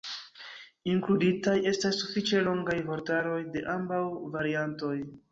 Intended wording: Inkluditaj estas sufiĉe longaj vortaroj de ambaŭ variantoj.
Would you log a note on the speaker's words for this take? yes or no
no